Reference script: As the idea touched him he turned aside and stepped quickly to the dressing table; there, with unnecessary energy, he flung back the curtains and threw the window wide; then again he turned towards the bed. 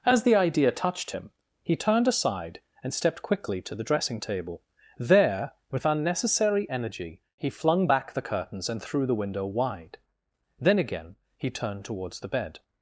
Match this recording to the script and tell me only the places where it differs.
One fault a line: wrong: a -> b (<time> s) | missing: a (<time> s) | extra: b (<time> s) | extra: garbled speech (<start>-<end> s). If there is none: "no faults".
no faults